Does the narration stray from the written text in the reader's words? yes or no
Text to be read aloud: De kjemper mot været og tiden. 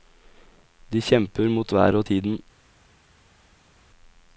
no